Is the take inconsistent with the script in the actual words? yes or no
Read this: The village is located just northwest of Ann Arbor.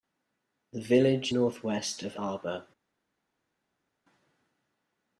yes